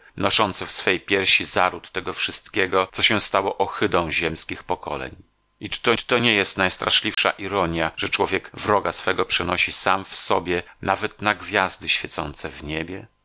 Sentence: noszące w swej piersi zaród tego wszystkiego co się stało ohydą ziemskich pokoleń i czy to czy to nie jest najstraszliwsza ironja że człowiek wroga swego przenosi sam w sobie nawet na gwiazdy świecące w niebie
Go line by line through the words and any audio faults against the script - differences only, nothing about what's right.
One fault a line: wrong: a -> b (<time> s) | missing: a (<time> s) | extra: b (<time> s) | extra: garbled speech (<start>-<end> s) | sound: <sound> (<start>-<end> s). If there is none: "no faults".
sound: dropout (7.1-7.2 s)